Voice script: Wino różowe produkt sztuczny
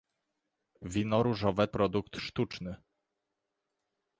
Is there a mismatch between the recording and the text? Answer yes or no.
no